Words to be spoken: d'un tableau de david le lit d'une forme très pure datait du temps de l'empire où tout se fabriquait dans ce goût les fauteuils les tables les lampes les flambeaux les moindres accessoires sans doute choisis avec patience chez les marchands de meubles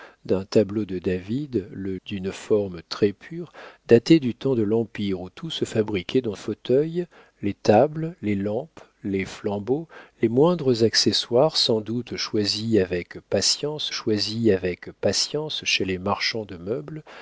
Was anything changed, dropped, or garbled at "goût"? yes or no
yes